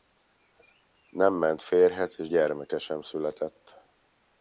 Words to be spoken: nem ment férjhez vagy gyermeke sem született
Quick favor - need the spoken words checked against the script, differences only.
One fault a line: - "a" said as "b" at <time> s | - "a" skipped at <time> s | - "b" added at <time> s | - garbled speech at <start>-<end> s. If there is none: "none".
- "vagy" said as "és" at 2.2 s